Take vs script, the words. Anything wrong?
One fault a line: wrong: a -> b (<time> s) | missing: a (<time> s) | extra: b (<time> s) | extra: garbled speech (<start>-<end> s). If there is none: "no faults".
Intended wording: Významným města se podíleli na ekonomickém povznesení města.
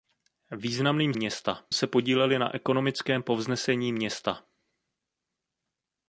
no faults